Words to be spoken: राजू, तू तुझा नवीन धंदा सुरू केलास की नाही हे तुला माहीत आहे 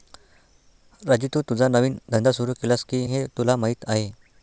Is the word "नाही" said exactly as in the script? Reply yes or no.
no